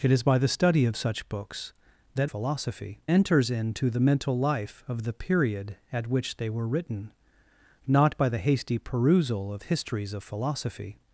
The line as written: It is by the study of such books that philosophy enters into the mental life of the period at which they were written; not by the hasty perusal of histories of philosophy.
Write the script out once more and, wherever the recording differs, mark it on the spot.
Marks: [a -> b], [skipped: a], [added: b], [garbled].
It is by the study of such books that philosophy enters into the mental life of the period at which they were written; not by the hasty perusal of histories of philosophy.